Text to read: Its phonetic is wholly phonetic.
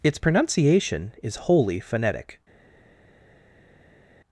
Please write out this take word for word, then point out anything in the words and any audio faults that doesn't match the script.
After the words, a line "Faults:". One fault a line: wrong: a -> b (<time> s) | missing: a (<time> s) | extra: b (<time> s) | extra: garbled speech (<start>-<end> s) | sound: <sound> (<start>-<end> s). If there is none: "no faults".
Its pronunciation is wholly phonetic.
Faults:
wrong: phonetic -> pronunciation (0.1 s)